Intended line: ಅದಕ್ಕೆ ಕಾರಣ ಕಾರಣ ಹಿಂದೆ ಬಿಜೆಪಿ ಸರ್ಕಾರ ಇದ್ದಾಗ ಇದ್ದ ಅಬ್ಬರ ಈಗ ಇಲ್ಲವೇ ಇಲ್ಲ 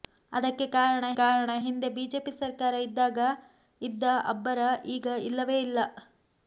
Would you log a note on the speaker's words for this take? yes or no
no